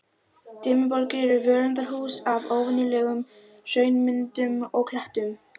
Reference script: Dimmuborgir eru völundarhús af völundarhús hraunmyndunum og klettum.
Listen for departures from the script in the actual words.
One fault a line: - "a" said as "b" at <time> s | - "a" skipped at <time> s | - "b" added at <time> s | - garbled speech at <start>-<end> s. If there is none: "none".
- "völundarhús" said as "óvenjulegum" at 2.6 s